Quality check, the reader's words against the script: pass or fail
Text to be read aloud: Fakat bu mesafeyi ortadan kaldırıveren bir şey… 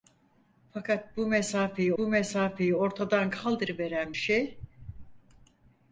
fail